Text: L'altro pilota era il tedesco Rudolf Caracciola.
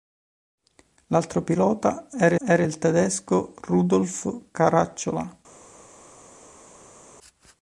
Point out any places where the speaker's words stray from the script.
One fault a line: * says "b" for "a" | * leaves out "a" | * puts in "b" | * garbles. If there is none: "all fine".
* puts in "era"